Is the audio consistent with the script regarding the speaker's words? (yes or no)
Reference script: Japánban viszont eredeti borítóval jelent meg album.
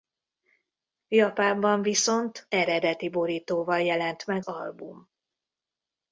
yes